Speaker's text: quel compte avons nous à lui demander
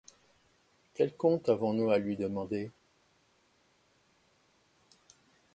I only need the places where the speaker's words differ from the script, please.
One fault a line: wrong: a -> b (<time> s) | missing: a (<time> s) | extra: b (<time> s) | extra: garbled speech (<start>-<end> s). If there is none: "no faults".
no faults